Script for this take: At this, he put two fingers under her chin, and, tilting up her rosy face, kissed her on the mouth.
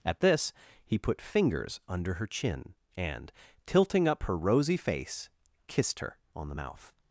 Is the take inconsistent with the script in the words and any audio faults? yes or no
yes